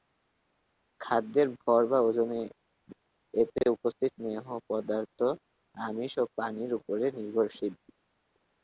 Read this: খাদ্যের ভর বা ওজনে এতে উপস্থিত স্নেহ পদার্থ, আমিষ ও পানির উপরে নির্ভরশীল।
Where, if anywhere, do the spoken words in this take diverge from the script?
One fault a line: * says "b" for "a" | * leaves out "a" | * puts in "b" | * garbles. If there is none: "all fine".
all fine